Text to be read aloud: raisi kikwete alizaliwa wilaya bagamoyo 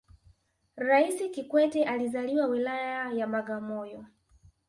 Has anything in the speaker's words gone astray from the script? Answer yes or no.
yes